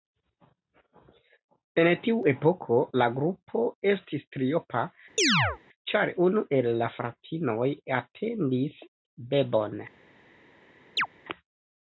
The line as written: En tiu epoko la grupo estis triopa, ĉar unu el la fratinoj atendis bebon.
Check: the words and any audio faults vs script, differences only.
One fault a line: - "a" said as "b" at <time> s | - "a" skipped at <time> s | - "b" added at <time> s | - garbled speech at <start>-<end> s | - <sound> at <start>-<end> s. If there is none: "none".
- chirp at 5.2-5.6 s
- chirp at 11.0-11.1 s